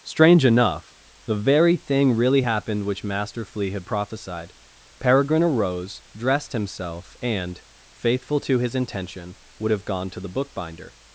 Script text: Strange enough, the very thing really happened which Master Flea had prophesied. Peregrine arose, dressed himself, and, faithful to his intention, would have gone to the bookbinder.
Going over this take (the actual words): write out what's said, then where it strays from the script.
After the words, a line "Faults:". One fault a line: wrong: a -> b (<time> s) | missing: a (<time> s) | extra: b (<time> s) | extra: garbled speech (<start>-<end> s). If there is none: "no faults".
Strange enough, the very thing really happened which Master Flea had prophesied. Peregrine arose, dressed himself, and, faithful to his intention, would have gone to the bookbinder.
Faults:
no faults